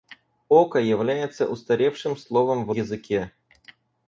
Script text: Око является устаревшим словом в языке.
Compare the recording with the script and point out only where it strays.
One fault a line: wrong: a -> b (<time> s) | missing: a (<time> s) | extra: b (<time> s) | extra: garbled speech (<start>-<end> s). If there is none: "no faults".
no faults